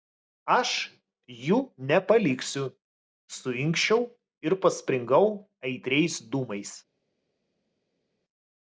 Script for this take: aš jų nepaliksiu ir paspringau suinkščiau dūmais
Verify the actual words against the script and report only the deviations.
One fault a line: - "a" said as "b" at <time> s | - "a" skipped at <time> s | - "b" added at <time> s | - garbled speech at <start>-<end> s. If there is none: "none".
- "suinkščiau" added at 3.4 s
- "suinkščiau" said as "aitriais" at 5.7 s